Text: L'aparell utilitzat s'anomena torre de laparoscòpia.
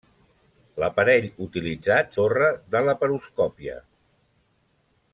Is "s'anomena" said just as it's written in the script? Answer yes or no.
no